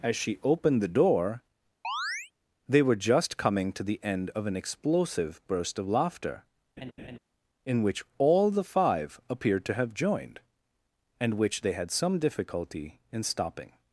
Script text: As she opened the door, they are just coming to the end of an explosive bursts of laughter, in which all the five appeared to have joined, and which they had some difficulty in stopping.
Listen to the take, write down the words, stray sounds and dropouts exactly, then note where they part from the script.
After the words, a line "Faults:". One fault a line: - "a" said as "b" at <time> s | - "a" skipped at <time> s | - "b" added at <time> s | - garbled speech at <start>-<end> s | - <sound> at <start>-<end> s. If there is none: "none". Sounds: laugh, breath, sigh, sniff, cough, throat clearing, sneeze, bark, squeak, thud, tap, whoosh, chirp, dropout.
As she opened the door, they were just coming to the end of an explosive burst of laughter, in which all the five appeared to have joined, and which they had some difficulty in stopping.
Faults:
- chirp at 1.8-2.3 s
- "are" said as "were" at 2.8 s
- "bursts" said as "burst" at 5.5 s
- laugh at 6.8-7.2 s